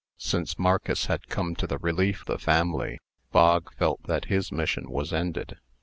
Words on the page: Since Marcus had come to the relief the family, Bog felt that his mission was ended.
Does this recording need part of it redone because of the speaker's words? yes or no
no